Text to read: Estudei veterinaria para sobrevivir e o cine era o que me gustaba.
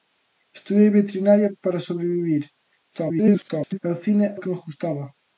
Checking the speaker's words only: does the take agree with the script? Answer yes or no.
no